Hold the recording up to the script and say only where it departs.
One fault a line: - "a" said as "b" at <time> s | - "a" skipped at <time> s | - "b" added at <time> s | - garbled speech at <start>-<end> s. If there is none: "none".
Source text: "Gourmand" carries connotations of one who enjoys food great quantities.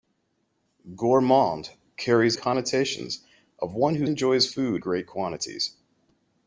none